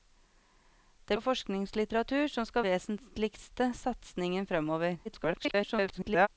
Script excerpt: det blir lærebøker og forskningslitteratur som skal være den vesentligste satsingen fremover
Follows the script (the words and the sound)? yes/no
no